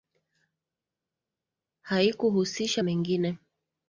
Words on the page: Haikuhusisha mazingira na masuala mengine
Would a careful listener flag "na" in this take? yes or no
yes